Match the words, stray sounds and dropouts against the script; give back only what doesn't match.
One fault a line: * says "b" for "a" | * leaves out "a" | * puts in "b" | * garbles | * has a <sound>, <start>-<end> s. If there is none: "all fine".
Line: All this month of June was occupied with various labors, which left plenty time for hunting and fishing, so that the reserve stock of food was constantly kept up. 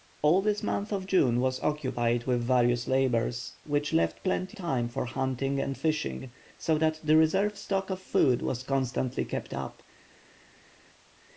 all fine